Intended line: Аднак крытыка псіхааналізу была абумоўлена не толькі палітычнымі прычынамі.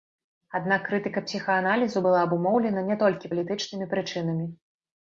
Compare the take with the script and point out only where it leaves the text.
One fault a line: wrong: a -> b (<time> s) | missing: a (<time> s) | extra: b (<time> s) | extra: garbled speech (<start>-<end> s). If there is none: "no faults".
no faults